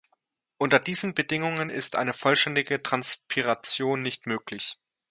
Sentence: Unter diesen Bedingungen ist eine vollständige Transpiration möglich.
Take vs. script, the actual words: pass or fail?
fail